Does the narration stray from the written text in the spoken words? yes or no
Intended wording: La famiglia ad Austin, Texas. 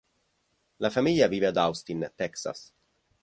yes